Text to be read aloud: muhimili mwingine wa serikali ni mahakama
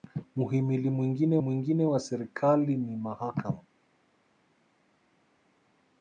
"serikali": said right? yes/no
yes